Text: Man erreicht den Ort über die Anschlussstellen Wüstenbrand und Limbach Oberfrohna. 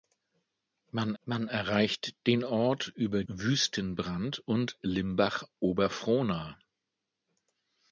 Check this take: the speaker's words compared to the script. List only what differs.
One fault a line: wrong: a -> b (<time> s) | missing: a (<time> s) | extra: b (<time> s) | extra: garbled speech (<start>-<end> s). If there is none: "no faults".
extra: man (1.2 s)
missing: die Anschlussstellen (3.2 s)